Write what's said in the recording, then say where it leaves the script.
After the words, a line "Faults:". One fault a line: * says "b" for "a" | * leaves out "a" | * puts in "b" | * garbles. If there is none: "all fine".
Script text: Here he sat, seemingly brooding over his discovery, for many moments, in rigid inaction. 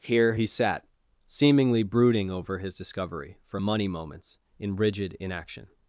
Here he sat, seemingly brooding over his discovery, for money moments, in rigid inaction.
Faults:
* says "money" for "many"